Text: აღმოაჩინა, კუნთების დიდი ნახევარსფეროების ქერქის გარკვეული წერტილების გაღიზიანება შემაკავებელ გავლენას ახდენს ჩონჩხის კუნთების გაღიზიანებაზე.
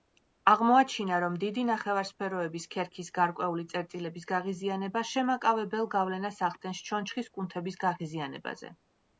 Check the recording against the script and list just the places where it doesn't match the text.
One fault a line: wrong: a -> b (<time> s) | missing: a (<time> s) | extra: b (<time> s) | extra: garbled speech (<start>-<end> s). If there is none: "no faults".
wrong: კუნთების -> რომ (1.2 s)